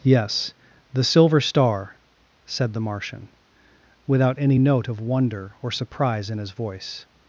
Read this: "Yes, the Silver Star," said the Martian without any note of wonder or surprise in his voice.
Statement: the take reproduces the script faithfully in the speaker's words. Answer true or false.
true